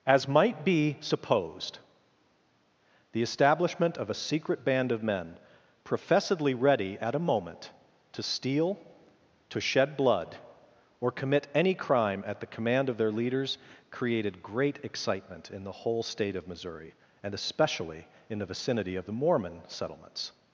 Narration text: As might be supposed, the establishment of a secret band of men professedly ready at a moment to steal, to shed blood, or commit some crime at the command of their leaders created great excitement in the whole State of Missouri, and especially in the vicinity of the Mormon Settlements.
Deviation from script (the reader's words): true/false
true